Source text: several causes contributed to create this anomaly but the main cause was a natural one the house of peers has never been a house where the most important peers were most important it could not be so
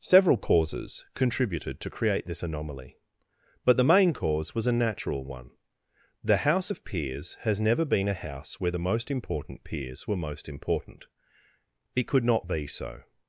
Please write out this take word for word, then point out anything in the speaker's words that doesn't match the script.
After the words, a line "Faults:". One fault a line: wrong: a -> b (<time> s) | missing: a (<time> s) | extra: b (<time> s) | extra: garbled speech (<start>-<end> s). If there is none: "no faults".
several causes contributed to create this anomaly but the main cause was a natural one the house of peers has never been a house where the most important peers were most important it could not be so
Faults:
no faults